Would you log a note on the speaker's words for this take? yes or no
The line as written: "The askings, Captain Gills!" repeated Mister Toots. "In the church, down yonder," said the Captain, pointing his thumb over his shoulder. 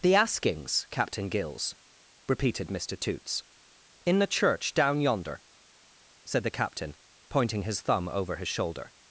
no